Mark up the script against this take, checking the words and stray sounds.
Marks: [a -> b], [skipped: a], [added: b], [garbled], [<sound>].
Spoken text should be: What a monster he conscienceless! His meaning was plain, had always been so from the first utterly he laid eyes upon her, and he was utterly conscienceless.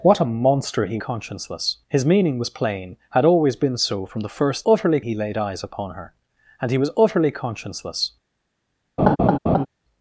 What a monster he conscienceless! His meaning was plain, had always been so from the first utterly he laid eyes upon her, and he was utterly conscienceless. [laugh]